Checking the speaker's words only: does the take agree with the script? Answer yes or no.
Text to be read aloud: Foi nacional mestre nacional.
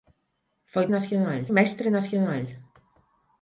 yes